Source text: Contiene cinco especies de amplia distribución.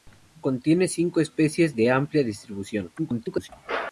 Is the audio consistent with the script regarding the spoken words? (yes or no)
no